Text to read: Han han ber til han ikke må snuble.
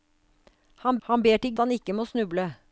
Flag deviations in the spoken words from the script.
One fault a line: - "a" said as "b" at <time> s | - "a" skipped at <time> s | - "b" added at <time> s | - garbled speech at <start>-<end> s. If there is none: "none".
none